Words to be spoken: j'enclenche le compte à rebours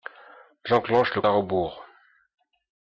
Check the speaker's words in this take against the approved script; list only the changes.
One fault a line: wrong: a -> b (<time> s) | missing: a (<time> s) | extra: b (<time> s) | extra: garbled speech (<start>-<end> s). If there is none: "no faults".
missing: compte (1.2 s)